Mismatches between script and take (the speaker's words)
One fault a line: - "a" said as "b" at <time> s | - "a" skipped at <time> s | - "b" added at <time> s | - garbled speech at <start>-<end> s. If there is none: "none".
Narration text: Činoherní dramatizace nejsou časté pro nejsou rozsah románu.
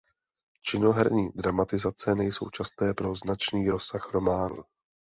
- "nejsou" said as "značný" at 3.2 s